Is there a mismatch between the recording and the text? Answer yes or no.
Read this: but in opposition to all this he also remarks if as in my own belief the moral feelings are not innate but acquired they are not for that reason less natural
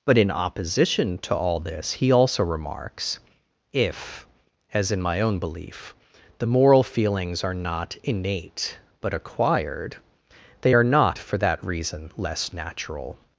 no